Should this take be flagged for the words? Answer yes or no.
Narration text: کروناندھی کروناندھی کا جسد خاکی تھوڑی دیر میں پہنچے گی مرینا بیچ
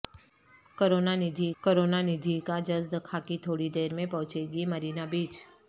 no